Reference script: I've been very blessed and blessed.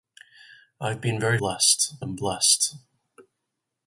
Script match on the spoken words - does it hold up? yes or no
yes